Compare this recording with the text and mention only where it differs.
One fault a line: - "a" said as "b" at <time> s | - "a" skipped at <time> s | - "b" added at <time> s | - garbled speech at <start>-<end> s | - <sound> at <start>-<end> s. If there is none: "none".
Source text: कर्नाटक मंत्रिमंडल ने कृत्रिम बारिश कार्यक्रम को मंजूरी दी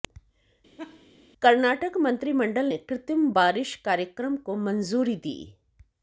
- laugh at 0.8-1.1 s